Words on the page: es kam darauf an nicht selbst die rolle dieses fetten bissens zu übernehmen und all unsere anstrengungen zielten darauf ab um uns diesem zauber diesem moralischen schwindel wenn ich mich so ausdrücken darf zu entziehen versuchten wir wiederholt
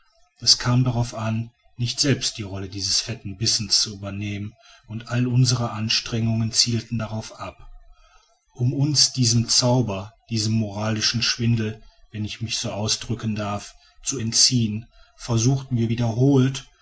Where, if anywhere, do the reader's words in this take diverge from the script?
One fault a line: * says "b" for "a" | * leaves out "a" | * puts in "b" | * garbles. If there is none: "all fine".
all fine